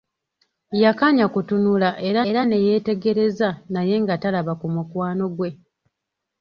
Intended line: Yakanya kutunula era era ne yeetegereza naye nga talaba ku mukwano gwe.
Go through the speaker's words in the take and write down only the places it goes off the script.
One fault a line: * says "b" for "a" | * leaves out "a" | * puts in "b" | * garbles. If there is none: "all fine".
all fine